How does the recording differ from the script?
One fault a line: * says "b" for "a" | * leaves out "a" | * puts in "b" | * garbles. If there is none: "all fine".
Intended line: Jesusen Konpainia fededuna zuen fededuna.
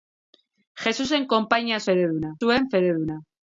all fine